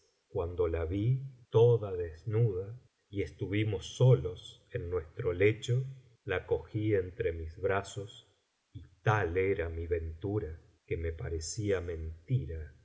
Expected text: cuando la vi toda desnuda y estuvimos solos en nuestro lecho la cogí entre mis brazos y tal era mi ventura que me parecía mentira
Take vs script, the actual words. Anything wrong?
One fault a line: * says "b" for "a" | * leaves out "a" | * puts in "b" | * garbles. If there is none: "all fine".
all fine